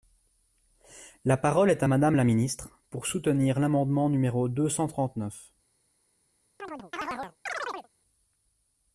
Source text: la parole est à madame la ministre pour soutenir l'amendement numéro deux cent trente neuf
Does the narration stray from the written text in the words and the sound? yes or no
yes